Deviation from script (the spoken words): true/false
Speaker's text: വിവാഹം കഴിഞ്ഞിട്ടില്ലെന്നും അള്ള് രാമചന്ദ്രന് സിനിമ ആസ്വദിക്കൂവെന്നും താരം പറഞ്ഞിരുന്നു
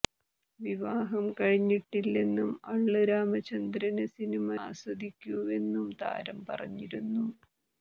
false